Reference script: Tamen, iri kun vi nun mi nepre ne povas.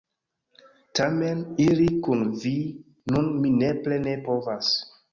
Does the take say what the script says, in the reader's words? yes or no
yes